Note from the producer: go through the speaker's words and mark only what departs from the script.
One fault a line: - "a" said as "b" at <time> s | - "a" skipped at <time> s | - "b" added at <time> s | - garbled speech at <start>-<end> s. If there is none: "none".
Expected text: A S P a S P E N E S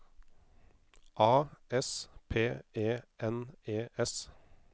- "a S P" skipped at 2.6 s